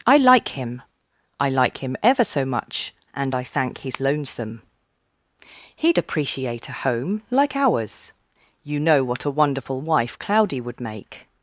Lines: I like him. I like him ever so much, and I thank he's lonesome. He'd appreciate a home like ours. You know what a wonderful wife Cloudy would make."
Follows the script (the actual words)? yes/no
yes